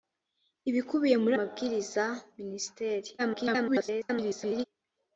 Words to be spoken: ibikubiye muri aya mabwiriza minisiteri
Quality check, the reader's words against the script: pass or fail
fail